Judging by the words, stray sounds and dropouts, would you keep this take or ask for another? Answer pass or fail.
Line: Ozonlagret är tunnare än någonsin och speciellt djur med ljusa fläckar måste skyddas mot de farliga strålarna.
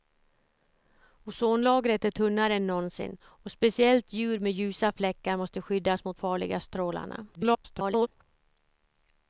fail